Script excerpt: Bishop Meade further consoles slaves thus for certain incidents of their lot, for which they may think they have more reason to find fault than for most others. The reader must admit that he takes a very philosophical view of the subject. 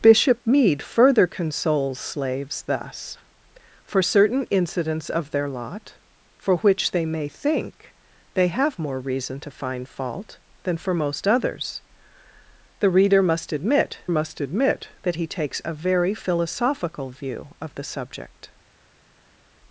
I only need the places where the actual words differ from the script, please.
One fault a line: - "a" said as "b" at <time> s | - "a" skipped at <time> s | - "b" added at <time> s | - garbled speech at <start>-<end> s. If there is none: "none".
- "must admit" added at 14.1 s